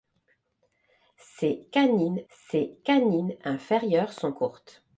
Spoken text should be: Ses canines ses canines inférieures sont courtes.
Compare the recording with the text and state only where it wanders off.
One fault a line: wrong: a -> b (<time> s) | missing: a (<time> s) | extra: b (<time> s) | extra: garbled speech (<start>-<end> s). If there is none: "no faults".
no faults